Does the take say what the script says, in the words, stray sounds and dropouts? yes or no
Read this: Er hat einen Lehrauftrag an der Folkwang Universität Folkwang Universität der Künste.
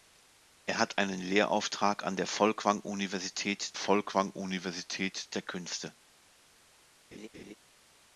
no